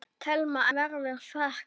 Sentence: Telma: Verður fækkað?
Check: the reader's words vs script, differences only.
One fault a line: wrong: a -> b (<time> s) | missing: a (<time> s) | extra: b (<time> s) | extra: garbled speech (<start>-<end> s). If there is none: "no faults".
no faults